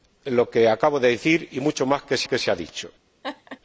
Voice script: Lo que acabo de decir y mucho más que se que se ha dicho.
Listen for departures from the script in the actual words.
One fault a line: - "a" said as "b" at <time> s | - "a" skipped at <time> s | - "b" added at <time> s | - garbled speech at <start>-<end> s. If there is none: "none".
none